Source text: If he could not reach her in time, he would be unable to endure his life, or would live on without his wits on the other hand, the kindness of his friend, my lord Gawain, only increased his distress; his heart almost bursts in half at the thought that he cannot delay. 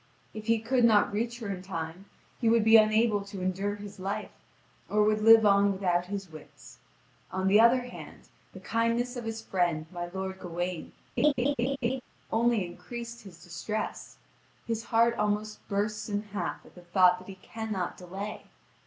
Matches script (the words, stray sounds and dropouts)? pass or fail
fail